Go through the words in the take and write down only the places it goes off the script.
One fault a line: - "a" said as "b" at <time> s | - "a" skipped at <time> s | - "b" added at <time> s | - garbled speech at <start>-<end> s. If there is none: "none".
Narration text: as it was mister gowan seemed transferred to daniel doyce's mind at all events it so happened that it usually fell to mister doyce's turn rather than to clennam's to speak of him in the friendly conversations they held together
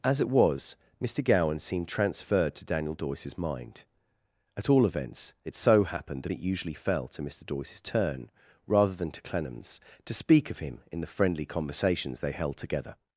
none